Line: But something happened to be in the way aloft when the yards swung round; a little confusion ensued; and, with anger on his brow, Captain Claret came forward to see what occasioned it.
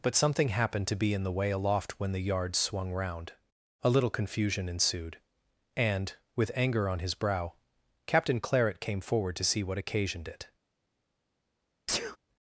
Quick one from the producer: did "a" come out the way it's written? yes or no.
yes